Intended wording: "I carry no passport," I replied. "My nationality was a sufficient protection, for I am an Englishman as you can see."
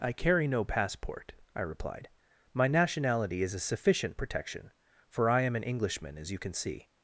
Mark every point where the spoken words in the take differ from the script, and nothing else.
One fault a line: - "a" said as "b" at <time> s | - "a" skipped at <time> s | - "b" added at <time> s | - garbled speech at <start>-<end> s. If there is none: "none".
- "was" said as "is" at 3.4 s